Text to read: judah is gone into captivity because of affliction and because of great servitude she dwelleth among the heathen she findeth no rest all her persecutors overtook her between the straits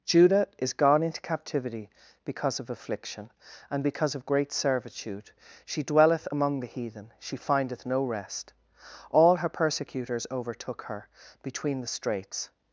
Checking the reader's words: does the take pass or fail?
pass